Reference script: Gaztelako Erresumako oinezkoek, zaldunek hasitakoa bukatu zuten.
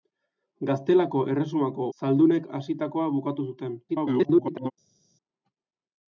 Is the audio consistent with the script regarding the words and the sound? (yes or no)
no